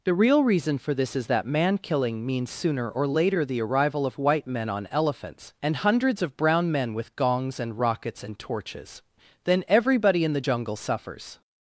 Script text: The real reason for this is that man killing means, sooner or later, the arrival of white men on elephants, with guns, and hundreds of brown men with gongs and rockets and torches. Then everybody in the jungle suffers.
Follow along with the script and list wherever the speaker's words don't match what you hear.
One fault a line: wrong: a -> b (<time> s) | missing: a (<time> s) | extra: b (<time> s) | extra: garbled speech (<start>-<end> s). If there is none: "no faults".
missing: with guns (5.5 s)